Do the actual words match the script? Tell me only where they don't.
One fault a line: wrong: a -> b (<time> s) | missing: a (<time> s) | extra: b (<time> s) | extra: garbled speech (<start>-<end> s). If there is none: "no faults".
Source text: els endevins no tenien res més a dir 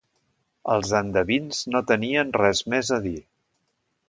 no faults